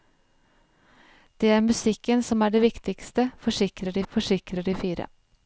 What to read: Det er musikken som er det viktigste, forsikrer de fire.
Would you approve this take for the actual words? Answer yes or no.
no